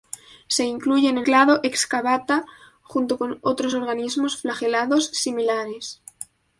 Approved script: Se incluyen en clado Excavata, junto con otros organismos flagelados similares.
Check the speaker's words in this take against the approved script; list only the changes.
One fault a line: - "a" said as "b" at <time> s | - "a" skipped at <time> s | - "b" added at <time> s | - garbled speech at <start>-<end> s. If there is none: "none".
none